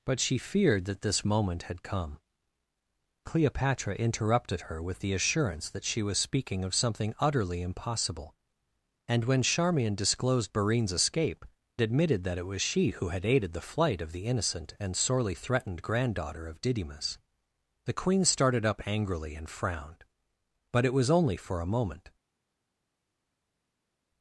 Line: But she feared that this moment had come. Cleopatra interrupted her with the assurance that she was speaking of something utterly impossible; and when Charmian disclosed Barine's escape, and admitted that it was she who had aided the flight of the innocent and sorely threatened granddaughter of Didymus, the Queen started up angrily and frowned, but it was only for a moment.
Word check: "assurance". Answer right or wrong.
right